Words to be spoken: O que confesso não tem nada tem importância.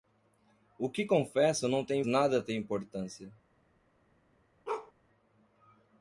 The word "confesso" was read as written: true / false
true